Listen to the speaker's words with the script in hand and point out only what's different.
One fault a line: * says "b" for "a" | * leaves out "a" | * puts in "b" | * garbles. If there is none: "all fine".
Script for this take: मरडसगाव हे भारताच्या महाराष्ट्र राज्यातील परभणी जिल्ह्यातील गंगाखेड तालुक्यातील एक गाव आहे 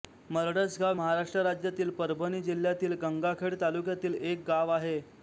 * leaves out "हे भारताच्या"